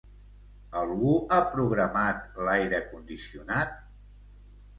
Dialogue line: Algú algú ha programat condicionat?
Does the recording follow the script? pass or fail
fail